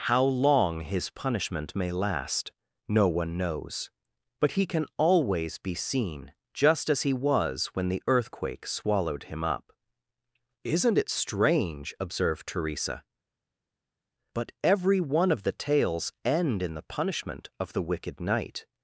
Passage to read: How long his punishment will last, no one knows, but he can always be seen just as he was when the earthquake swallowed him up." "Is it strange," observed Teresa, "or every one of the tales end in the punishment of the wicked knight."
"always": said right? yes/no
yes